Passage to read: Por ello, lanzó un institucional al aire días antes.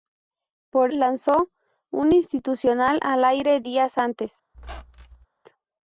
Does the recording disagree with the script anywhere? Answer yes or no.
yes